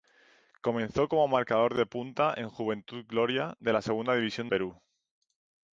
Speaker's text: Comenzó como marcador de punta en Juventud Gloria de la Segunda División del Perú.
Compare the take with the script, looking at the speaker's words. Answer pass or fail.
fail